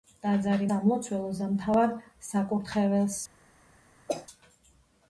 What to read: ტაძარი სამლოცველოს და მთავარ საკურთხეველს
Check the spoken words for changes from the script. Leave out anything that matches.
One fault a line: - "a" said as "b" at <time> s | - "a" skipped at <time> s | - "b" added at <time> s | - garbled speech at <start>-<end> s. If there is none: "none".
none